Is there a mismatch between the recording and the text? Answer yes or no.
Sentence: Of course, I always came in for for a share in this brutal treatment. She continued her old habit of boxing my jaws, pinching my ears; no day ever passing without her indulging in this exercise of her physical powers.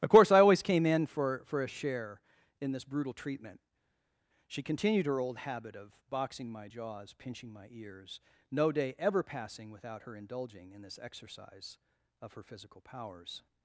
no